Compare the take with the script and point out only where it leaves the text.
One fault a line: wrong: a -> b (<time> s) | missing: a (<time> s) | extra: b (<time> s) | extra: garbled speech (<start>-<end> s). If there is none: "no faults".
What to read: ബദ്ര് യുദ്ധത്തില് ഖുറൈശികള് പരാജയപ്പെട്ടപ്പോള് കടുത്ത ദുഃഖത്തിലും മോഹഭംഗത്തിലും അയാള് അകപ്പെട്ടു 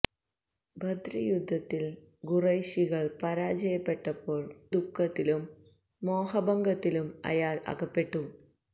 missing: കടുത്ത (4.5 s)